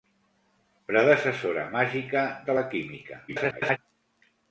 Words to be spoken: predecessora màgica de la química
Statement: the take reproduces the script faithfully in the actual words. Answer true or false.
false